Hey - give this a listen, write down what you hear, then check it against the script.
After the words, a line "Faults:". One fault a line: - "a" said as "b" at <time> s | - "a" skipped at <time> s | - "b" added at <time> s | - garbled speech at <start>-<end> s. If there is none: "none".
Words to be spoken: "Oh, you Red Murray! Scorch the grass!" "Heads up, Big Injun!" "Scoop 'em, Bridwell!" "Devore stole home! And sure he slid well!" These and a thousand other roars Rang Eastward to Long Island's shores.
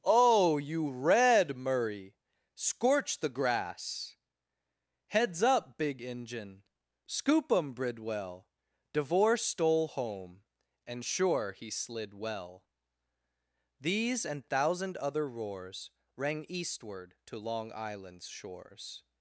"Oh, you Red Murray! Scorch the grass!" "Heads up, Big Injun!" "Scoop 'em, Bridwell!" "Devore stole home! And sure he slid well!" These and thousand other roars Rang Eastward to Long Island's shores.
Faults:
- "a" skipped at 14.5 s